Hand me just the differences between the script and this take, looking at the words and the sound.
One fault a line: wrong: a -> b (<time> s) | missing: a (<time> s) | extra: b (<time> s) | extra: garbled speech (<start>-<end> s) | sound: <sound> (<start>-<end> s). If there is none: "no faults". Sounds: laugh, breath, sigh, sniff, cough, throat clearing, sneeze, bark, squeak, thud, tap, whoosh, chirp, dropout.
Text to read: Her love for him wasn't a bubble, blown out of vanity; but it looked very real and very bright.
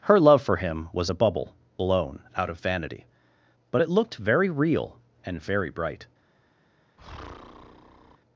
wrong: wasn't -> was (0.9 s)
sound: breath (7.0-8.2 s)